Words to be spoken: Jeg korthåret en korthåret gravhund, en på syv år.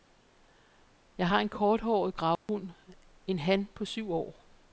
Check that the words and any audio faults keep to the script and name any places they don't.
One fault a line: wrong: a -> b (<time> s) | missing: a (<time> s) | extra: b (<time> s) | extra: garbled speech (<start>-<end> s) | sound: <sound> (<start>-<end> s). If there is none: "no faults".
wrong: korthåret -> har (1.3 s)
sound: dropout (2.4-2.5 s)
extra: han (3.4 s)